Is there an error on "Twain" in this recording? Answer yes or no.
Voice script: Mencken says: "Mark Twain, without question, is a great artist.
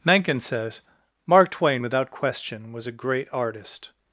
no